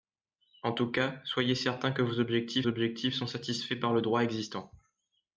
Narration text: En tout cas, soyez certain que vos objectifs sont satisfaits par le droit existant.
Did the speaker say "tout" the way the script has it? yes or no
yes